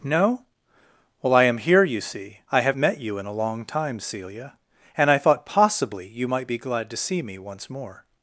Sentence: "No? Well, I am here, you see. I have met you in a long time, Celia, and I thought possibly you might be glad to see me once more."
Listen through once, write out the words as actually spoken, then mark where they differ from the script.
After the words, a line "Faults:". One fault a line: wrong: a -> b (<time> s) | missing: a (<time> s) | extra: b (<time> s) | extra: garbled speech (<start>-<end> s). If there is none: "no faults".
"No? Well, I am here, you see. I have met you in a long time, Celia, and I thought possibly you might be glad to see me once more."
Faults:
no faults